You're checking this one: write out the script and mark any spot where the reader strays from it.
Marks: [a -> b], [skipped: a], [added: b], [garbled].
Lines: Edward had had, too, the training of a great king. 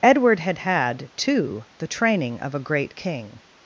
Edward had had, too, the training of a great king.